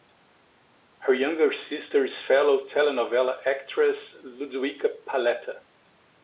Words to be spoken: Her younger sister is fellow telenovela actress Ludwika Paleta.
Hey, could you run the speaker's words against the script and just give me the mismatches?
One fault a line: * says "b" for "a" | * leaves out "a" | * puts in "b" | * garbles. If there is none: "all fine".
all fine